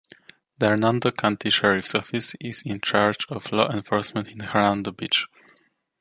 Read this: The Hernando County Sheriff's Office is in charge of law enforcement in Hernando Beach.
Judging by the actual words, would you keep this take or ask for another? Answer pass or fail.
pass